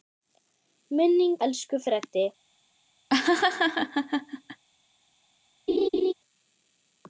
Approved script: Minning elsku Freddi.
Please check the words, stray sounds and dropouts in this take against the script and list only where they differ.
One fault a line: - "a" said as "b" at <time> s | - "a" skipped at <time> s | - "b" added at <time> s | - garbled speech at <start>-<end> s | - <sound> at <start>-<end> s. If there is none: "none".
- laugh at 3.1-4.6 s
- laugh at 5.7-6.1 s